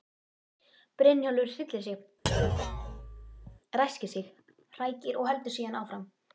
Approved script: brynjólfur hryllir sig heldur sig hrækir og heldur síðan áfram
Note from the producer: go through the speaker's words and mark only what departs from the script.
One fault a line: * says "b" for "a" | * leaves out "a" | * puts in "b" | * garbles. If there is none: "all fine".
* says "ræskir" for "heldur"